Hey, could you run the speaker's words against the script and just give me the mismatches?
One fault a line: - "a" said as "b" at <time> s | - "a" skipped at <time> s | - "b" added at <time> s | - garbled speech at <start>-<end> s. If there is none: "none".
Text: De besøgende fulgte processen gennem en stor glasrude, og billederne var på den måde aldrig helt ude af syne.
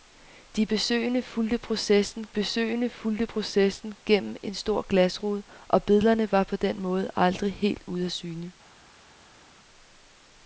- "besøgende fulgte processen" added at 2.3 s